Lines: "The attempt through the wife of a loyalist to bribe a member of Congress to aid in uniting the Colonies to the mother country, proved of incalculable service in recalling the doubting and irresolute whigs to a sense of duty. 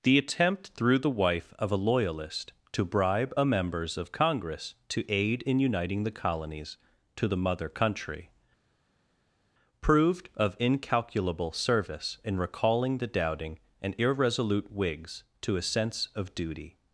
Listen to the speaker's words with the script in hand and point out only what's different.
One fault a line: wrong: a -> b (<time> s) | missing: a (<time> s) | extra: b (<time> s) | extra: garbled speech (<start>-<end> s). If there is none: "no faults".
wrong: member -> members (3.4 s)